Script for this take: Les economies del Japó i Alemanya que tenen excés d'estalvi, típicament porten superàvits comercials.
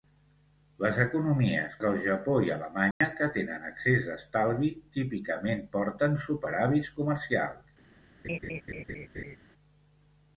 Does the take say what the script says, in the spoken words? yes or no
yes